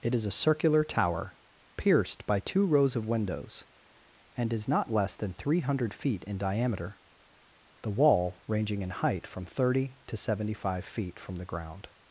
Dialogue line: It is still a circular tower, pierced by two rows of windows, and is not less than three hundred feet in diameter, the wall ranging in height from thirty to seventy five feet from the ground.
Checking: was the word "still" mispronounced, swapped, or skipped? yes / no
yes